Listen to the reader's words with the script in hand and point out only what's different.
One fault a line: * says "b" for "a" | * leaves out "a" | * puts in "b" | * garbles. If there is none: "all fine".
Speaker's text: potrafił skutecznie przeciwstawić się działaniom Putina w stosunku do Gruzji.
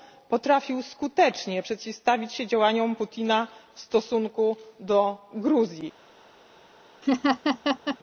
all fine